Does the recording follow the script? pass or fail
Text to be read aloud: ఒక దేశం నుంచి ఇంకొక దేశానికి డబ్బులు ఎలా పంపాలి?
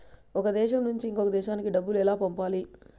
pass